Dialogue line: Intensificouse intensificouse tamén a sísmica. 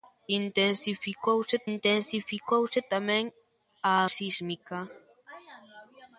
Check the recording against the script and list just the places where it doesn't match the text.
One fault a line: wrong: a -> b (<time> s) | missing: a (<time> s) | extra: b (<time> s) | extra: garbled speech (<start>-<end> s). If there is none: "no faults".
no faults